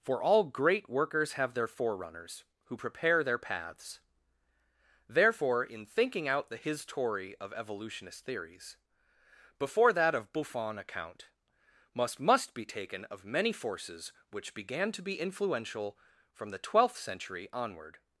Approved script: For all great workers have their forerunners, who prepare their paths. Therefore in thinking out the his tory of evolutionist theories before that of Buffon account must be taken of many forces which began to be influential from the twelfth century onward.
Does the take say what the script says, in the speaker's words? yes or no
no